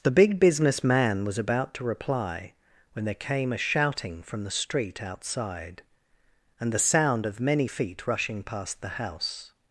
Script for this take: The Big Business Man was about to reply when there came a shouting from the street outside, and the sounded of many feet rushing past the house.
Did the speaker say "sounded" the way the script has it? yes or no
no